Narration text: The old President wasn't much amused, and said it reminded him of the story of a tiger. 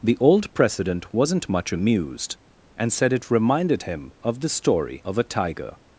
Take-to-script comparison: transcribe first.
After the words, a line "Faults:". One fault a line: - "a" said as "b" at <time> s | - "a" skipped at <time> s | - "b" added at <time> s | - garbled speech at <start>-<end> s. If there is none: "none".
The old President wasn't much amused, and said it reminded him of the story of a tiger.
Faults:
none